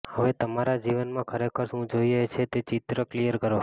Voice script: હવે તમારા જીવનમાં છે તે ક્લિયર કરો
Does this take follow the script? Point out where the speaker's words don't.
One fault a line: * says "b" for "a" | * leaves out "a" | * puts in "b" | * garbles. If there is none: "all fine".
* puts in "ખરેખર શું જોઈએ"
* puts in "ચિત્ર"